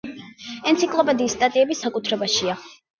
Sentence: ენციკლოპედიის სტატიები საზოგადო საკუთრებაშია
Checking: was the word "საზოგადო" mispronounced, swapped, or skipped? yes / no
yes